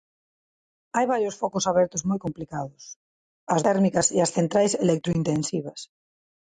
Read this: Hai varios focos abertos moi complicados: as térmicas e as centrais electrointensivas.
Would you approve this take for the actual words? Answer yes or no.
yes